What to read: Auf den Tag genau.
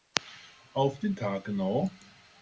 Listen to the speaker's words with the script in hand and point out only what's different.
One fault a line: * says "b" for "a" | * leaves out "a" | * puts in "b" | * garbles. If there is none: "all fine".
all fine